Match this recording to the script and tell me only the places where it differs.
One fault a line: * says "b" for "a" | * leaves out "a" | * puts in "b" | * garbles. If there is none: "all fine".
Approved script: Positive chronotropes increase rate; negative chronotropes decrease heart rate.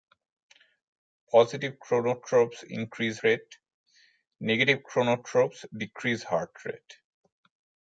all fine